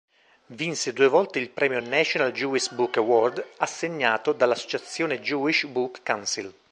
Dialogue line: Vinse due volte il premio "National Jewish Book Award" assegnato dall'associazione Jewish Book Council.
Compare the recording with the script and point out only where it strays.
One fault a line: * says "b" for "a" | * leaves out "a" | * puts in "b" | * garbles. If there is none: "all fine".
all fine